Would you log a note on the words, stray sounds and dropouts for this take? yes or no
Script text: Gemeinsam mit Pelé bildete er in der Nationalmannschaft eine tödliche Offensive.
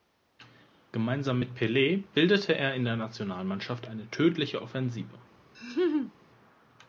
yes